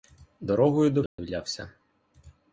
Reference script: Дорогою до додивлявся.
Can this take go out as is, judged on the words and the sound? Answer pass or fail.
fail